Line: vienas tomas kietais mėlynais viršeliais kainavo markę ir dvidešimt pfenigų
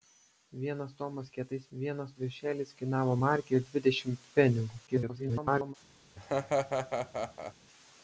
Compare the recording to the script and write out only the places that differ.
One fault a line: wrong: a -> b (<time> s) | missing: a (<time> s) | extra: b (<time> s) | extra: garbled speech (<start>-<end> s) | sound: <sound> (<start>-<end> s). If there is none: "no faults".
wrong: mėlynais -> vienas (1.8 s)
extra: garbled speech (4.9-5.7 s)
sound: laugh (6.2-7.5 s)